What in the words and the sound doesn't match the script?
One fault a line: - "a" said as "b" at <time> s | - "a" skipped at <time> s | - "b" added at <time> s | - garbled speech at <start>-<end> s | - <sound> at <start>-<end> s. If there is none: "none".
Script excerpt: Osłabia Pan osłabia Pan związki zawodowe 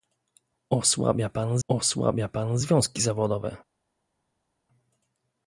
none